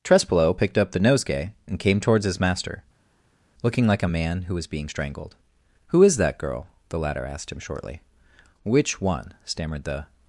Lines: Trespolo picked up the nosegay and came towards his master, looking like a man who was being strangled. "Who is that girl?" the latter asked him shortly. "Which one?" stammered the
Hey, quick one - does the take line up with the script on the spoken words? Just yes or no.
yes